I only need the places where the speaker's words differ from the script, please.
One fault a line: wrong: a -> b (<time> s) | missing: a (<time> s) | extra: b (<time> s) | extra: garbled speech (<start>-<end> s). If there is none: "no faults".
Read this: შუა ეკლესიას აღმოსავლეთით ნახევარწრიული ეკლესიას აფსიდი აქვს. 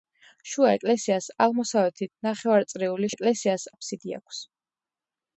no faults